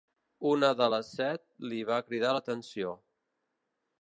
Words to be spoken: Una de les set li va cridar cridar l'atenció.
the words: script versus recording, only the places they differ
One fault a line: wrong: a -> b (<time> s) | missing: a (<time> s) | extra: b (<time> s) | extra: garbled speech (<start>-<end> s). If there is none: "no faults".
missing: cridar (2.3 s)